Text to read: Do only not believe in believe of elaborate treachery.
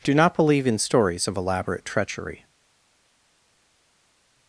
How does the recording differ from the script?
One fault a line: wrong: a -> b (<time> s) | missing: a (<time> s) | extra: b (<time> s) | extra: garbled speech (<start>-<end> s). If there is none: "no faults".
missing: only (0.1 s)
wrong: believe -> stories (0.8 s)